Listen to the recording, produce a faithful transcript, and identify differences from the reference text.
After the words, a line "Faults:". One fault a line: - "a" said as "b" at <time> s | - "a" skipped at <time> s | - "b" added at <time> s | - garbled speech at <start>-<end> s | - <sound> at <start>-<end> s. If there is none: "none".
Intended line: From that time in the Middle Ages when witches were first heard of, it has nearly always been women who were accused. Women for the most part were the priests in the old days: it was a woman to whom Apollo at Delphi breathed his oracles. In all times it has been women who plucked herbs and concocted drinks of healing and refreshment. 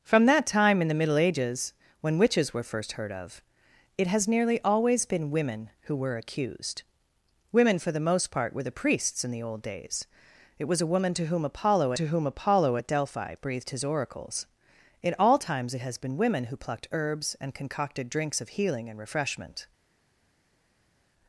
From that time in the Middle Ages when witches were first heard of, it has nearly always been women who were accused. Women for the most part were the priests in the old days: it was a woman to whom Apollo to whom Apollo at Delphi breathed his oracles. In all times it has been women who plucked herbs and concocted drinks of healing and refreshment.
Faults:
- "to whom Apollo" added at 11.9 s